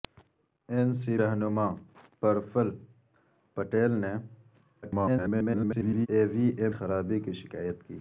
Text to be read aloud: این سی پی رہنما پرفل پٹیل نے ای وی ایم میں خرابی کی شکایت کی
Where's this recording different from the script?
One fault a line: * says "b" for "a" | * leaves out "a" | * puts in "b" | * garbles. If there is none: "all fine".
* leaves out "پی"
* garbles
* leaves out "میں"